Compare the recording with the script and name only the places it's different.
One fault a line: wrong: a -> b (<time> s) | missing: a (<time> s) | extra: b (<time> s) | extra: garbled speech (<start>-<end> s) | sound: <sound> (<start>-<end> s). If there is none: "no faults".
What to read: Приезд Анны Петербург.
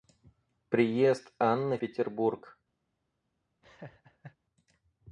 sound: laugh (3.6-4.4 s)